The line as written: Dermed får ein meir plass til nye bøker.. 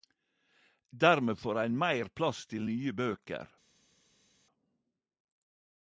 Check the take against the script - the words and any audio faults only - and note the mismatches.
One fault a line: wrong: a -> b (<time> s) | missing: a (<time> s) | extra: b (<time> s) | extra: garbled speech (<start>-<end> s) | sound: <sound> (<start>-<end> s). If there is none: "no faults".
no faults